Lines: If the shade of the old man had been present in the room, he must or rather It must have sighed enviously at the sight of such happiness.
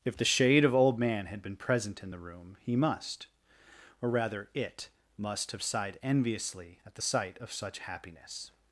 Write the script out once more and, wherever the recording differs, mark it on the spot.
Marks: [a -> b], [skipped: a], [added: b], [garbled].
If the shade of [skipped: the] old man had been present in the room, he must or rather It must have sighed enviously at the sight of such happiness.